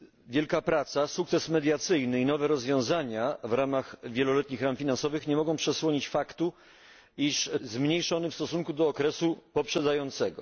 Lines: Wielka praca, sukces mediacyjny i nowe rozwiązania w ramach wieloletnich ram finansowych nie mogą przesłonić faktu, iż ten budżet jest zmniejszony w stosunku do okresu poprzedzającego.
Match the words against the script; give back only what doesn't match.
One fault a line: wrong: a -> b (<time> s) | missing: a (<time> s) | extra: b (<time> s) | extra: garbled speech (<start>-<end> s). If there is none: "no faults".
missing: ten budżet jest (7.5 s)